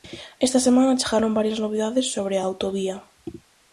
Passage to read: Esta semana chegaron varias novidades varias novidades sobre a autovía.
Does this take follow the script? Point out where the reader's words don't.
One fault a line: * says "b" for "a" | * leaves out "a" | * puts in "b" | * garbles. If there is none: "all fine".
* leaves out "varias novidades"